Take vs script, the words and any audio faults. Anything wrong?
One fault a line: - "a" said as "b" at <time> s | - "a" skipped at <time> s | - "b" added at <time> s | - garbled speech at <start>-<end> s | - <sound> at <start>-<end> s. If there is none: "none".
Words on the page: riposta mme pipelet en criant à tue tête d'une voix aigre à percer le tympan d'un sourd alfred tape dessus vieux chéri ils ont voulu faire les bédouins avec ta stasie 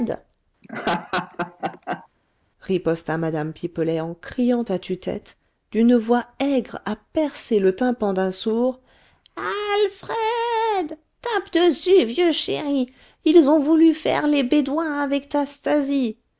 - laugh at 0.6-2.1 s